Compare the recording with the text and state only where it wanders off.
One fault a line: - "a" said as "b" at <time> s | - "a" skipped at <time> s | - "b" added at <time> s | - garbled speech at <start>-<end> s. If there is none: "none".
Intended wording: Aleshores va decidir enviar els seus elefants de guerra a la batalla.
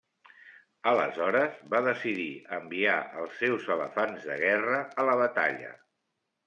none